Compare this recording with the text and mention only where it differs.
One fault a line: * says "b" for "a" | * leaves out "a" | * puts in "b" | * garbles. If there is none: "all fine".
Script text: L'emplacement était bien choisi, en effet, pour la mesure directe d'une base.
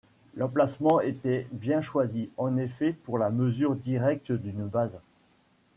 all fine